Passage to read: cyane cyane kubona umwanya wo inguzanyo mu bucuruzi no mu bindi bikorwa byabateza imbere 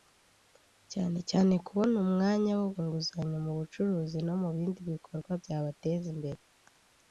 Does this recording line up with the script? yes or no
yes